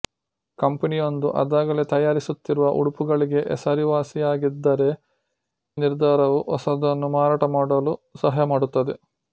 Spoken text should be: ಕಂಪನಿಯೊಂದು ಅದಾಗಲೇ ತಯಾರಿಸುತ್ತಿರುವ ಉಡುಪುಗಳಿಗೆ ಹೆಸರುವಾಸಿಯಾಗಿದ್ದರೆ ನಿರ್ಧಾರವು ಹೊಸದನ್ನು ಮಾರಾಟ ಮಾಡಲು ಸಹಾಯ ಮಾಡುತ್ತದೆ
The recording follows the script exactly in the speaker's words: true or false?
true